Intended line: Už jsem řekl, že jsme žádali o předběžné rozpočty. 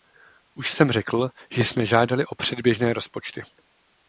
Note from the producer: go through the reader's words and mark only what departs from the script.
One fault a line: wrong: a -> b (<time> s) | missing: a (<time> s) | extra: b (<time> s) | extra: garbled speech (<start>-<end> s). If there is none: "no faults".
no faults